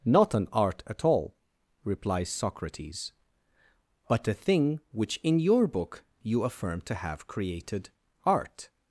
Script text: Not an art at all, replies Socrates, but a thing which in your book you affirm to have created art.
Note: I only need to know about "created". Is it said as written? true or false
true